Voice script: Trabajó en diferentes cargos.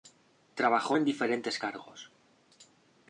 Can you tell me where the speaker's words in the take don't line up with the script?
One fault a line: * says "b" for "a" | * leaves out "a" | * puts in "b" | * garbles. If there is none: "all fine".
all fine